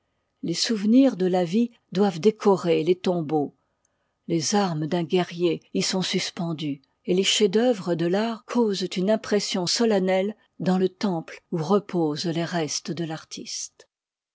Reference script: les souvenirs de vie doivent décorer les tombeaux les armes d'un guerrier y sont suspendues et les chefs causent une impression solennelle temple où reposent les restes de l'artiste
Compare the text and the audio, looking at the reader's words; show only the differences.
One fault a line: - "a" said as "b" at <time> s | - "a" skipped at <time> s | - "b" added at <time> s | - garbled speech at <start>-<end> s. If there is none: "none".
- "la" added at 1.3 s
- "d'œuvre de l'art" added at 7.5 s
- "dans le" added at 10.6 s